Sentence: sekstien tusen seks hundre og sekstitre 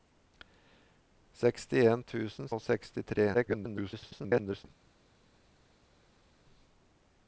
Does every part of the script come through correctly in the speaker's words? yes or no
no